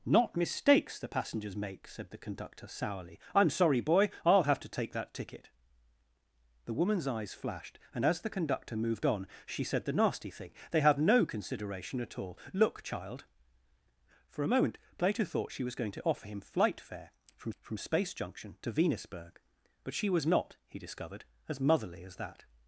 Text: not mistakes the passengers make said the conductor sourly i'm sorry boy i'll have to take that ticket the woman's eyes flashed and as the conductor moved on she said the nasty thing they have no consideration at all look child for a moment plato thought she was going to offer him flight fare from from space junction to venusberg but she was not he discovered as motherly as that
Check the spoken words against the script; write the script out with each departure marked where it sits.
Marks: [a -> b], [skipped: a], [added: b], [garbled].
not mistakes the passengers make said the conductor sourly i'm sorry boy i'll have to take that ticket the woman's eyes flashed and as the conductor moved on she said the nasty thing they have no consideration at all look child for a moment plato thought she was going to offer him flight fare from from space junction to venusberg but she was not he discovered as motherly as that